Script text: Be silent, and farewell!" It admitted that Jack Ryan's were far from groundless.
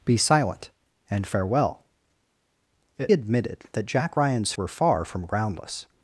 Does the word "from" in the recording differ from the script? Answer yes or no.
no